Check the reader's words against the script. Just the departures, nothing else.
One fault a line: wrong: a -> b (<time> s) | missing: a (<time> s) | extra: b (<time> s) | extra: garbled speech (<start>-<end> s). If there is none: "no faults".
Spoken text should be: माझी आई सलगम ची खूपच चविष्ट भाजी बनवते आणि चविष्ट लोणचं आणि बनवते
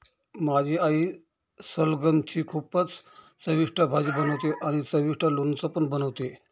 wrong: आणि -> पण (5.7 s)